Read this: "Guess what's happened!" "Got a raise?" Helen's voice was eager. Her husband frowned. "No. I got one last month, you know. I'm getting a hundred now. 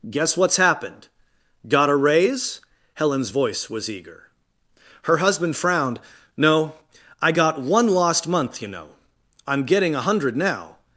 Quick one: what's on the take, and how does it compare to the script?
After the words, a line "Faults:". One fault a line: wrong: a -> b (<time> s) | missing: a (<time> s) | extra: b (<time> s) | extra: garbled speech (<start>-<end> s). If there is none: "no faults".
"Guess what's happened!" "Got a raise?" Helen's voice was eager. Her husband frowned. "No. I got one lost month, you know. I'm getting a hundred now.
Faults:
wrong: last -> lost (7.9 s)